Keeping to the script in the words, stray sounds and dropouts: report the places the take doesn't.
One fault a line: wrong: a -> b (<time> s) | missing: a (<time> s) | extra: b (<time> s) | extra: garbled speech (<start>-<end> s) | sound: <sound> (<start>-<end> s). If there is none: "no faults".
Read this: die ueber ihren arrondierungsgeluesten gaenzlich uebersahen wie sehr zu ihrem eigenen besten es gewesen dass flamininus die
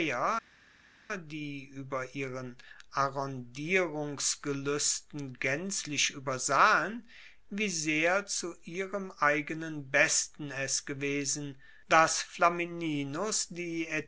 no faults